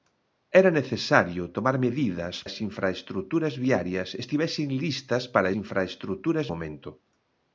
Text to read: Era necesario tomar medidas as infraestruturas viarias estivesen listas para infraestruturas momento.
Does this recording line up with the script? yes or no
yes